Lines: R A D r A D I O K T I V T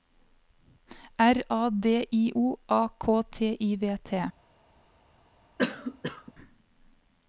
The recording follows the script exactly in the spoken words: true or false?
false